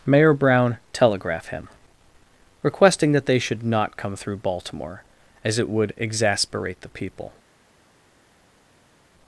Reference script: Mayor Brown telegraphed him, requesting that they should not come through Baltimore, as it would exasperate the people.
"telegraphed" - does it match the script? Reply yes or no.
no